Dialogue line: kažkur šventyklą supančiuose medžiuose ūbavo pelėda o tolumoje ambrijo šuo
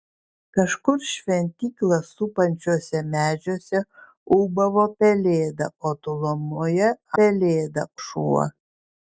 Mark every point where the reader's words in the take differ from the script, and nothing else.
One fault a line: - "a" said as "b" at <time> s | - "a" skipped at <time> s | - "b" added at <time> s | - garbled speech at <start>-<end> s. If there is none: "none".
- "ambrijo" said as "pelėda" at 7.2 s